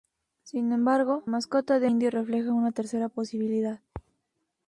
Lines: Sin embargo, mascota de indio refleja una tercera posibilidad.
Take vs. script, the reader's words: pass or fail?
pass